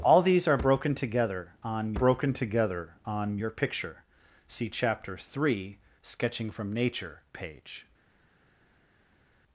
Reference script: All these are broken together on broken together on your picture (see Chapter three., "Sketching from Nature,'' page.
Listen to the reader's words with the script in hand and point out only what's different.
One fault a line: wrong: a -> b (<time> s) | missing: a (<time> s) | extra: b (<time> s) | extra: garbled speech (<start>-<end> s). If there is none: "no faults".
no faults